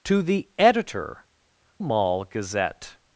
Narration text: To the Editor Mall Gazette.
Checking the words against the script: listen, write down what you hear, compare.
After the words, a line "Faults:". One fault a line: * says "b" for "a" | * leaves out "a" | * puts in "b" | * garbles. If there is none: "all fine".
To the Editor Mall Gazette.
Faults:
all fine